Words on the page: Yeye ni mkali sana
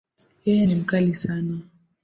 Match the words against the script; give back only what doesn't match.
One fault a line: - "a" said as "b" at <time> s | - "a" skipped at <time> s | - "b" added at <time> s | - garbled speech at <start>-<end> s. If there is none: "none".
none